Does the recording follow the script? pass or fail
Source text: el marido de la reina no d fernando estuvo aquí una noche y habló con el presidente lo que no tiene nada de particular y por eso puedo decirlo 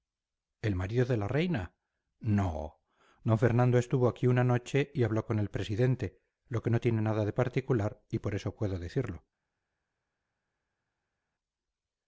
pass